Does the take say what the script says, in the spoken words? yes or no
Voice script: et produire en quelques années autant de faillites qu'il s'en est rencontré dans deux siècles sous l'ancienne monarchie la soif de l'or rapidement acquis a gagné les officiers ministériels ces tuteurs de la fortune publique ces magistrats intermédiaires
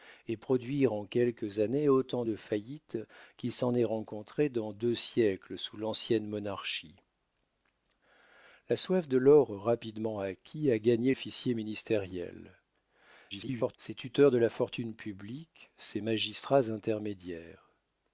no